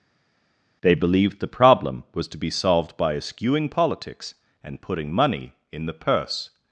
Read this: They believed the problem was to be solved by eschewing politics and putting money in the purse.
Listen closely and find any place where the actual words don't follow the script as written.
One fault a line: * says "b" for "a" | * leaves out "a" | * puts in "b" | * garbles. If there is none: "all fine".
all fine